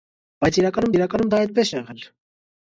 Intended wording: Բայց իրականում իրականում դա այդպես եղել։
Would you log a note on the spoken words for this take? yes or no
no